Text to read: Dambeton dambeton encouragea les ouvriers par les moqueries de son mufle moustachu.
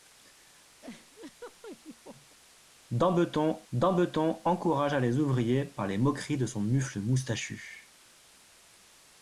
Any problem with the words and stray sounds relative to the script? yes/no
yes